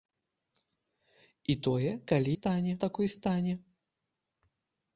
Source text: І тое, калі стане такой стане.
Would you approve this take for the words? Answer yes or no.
yes